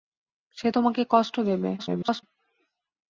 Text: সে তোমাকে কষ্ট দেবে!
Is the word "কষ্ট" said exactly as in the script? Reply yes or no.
yes